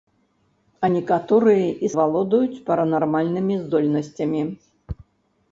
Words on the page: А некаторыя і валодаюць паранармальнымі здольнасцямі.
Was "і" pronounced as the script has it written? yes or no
yes